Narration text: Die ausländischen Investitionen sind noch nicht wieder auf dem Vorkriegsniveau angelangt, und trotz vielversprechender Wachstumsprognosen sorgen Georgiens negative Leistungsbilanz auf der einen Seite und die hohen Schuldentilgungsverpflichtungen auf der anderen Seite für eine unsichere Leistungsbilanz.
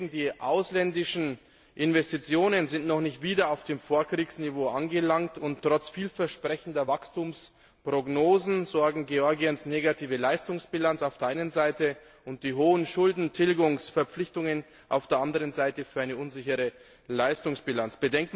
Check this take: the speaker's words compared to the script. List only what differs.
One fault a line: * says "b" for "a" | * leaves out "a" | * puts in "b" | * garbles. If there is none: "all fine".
all fine